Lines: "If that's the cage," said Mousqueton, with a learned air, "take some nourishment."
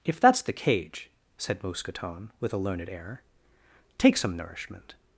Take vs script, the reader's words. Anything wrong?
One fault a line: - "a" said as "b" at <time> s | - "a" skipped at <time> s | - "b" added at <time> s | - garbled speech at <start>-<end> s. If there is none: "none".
none